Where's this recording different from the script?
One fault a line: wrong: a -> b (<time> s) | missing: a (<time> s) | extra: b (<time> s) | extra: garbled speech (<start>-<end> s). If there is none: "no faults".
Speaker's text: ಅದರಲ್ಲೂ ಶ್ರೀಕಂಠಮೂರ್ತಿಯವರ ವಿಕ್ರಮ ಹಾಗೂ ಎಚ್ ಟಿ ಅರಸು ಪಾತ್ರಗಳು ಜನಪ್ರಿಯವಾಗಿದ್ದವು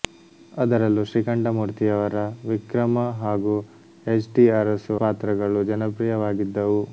no faults